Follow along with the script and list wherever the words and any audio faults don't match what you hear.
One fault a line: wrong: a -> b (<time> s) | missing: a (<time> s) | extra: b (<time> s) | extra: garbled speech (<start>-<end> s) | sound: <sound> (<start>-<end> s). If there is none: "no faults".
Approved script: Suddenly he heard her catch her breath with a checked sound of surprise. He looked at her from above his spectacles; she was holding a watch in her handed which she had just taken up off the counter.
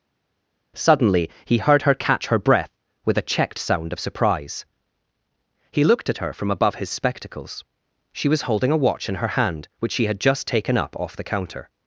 wrong: handed -> hand (9.4 s)